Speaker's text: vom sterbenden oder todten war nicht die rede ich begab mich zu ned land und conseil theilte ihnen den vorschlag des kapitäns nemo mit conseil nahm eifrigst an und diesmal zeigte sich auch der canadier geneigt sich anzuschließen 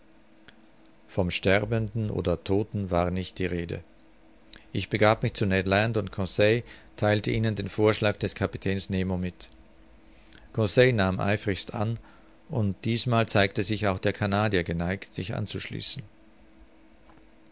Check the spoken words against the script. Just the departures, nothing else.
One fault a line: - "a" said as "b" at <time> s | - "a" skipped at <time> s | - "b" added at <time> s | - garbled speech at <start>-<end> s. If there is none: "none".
none